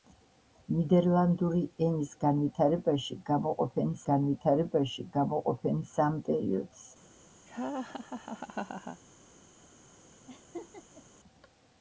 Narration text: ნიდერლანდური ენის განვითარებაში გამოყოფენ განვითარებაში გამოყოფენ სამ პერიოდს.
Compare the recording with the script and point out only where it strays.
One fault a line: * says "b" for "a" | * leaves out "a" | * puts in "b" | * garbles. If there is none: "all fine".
all fine